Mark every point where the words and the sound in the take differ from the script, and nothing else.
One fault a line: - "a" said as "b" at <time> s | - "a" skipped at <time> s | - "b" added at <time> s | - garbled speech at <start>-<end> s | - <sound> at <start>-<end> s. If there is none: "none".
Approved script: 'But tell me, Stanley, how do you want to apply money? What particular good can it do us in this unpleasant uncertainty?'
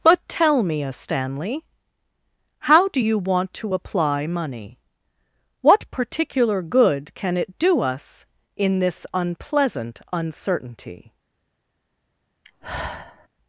- "a" added at 0.8 s
- sigh at 12.4-13.3 s